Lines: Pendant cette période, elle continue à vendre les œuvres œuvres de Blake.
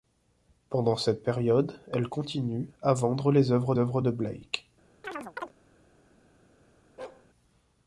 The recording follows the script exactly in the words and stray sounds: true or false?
false